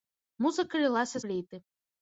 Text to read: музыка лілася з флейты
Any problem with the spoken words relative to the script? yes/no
yes